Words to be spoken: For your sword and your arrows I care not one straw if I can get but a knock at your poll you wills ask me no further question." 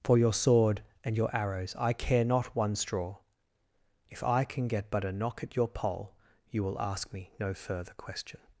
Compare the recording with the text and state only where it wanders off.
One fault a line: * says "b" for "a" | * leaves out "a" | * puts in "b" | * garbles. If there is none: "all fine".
* says "will" for "wills"